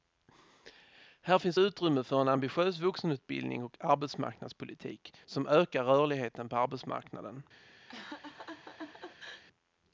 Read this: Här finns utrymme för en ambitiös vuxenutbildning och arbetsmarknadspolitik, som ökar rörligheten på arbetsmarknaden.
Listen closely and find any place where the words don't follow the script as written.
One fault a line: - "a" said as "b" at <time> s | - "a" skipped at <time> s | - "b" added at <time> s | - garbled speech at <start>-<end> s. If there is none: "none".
none